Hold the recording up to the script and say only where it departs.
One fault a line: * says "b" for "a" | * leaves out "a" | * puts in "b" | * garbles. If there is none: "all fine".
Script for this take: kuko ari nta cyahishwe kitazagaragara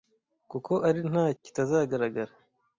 * leaves out "cyahishwe"